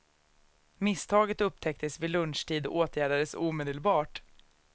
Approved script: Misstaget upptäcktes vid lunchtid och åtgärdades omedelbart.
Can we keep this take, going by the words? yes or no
yes